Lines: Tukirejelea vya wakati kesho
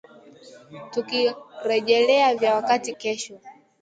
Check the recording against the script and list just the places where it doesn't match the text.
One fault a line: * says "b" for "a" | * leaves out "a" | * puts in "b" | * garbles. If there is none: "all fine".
all fine